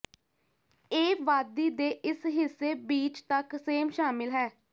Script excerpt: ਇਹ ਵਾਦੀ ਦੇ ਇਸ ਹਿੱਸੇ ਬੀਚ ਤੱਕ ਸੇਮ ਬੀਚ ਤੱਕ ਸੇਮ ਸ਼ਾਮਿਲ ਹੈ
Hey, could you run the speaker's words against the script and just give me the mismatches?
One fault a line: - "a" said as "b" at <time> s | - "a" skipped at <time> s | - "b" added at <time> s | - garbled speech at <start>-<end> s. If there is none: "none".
- "ਬੀਚ ਤੱਕ ਸੇਮ" skipped at 3.9 s